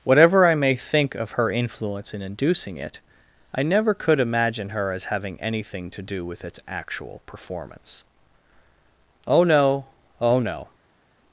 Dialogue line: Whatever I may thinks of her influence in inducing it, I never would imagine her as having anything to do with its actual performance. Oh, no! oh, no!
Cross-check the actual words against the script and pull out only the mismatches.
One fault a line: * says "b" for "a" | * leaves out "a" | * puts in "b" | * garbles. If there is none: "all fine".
* says "think" for "thinks"
* says "could" for "would"